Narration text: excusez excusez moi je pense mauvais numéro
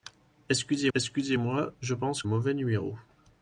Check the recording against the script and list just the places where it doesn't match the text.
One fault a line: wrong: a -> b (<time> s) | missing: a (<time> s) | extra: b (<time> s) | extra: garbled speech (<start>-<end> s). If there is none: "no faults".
no faults